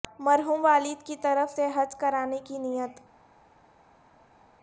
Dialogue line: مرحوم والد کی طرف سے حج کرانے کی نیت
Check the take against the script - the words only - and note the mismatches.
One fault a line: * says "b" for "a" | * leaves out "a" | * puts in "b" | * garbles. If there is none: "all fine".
all fine